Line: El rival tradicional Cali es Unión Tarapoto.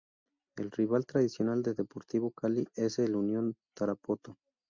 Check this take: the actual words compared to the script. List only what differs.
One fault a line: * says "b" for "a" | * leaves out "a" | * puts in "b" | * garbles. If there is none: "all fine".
* puts in "de Deportivo"
* puts in "el"